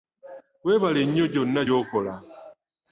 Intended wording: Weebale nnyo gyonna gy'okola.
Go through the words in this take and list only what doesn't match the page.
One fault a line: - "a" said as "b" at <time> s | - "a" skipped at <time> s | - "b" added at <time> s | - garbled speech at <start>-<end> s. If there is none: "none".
none